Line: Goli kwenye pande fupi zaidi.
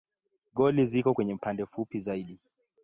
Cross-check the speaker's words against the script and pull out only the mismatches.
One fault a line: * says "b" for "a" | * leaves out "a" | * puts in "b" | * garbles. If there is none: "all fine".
* puts in "ziko"